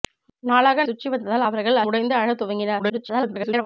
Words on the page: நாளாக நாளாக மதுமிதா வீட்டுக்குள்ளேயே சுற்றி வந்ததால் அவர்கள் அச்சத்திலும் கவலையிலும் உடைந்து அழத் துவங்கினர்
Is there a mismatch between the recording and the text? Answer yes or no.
yes